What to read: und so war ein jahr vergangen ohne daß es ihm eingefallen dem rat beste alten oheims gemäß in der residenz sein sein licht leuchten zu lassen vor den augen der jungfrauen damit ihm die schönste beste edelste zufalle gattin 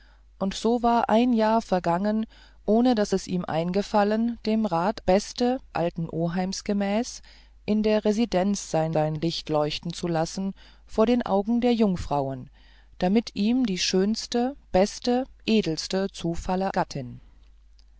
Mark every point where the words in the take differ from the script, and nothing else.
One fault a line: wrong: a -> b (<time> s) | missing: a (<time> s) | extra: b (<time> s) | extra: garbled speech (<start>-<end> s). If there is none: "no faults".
no faults